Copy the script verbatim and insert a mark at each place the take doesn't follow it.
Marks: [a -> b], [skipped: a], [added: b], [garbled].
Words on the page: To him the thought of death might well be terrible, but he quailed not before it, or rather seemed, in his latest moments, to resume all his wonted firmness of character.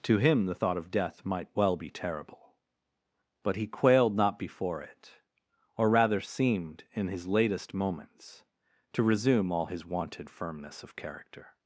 To him the thought of death might well be terrible, but he quailed not before it, or rather seemed, in his latest moments, to resume all his wonted firmness of character.